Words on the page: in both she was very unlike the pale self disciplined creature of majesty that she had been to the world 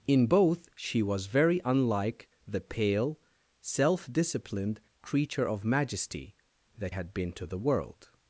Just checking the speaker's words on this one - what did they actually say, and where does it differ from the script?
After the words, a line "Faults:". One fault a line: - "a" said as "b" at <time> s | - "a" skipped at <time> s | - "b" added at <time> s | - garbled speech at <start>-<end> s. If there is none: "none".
in both she was very unlike the pale self disciplined creature of majesty that had been to the world
Faults:
- "she" skipped at 6.9 s